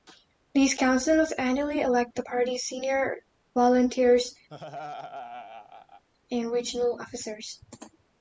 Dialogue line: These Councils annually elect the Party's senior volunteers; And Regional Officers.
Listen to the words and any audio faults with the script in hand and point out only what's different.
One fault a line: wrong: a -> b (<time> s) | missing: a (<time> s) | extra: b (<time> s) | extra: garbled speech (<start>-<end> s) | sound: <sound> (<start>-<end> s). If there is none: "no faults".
sound: laugh (4.5-6.0 s)